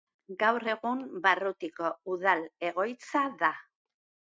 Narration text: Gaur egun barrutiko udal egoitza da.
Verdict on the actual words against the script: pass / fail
pass